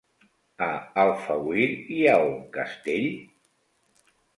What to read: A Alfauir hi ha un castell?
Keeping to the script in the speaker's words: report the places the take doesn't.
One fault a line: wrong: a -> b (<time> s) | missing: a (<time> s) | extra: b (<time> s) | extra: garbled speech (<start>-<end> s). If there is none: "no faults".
no faults